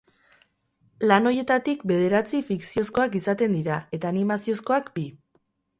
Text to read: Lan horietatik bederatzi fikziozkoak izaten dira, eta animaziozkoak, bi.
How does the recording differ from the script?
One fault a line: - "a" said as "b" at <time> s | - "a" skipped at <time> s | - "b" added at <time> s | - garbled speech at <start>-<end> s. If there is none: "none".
none